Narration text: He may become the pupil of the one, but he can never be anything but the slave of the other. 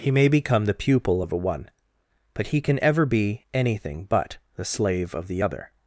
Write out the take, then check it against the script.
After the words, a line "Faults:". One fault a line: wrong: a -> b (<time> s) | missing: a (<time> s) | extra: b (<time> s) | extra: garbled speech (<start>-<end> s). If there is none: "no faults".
He may become the pupil of a one, but he can ever be anything but the slave of the other.
Faults:
wrong: the -> a (1.3 s)
wrong: never -> ever (2.8 s)